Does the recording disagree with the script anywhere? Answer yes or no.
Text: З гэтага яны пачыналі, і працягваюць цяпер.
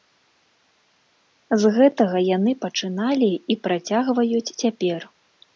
no